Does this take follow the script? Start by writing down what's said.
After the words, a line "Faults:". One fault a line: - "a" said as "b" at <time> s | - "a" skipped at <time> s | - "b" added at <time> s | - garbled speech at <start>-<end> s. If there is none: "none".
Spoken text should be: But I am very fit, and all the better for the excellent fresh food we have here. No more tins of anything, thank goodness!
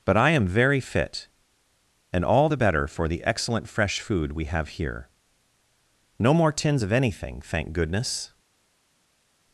But I am very fit, and all the better for the excellent fresh food we have here. No more tins of anything, thank goodness!
Faults:
none